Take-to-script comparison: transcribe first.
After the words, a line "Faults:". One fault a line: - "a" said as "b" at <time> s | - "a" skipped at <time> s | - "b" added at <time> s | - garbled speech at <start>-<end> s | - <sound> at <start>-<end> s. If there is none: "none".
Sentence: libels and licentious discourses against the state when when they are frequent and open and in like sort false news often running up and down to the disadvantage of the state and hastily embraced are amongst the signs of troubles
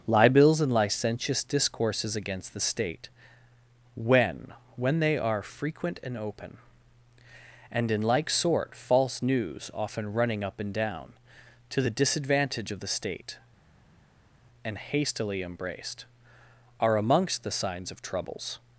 libels and licentious discourses against the state when when they are frequent and open and in like sort false news often running up and down to the disadvantage of the state and hastily embraced are amongst the signs of troubles
Faults:
none